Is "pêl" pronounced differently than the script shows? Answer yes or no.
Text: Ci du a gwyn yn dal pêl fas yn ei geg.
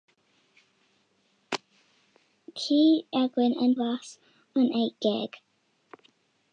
yes